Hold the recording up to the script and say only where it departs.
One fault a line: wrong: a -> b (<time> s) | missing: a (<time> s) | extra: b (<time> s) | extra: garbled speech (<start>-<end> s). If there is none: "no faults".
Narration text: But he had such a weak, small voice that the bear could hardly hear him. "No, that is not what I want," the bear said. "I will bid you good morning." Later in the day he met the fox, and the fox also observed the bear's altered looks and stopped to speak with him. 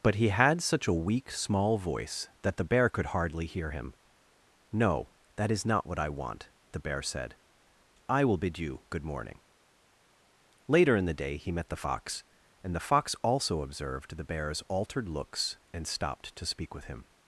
no faults